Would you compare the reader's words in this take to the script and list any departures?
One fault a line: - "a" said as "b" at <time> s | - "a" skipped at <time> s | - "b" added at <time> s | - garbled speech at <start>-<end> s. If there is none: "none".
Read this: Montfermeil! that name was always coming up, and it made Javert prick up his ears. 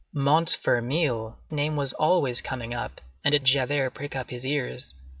- "that" skipped at 1.4 s
- "made" skipped at 3.4 s